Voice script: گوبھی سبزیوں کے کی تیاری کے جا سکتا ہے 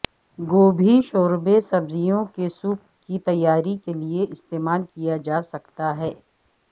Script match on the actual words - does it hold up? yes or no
no